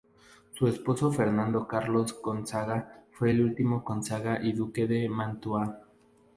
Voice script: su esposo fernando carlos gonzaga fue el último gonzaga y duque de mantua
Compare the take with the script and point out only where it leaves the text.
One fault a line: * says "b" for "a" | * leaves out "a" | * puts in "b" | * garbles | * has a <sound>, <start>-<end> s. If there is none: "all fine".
all fine